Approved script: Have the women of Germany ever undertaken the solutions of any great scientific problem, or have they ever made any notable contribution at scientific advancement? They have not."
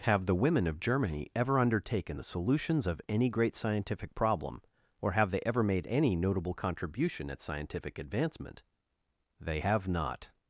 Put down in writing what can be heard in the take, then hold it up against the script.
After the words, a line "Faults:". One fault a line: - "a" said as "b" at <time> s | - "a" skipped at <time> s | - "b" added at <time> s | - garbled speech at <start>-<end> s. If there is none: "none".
Have the women of Germany ever undertaken the solutions of any great scientific problem, or have they ever made any notable contribution at scientific advancement? They have not."
Faults:
none